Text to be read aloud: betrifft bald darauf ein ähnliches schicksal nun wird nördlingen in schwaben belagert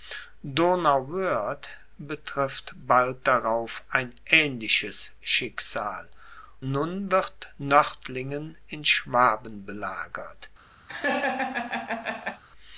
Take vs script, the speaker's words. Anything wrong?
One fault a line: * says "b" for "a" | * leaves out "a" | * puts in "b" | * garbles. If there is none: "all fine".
all fine